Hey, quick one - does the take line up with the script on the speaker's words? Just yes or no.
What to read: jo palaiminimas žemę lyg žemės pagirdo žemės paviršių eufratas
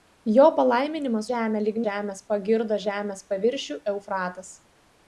yes